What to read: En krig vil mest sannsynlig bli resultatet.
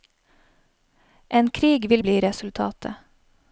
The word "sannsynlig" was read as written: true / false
false